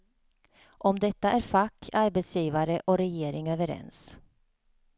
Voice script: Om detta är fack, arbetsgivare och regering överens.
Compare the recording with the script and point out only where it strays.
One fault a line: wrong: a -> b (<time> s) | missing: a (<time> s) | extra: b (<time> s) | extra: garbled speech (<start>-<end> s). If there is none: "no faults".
no faults